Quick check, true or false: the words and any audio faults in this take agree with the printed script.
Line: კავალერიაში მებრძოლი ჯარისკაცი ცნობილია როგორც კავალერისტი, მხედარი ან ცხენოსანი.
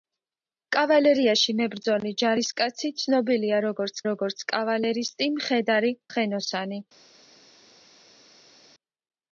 false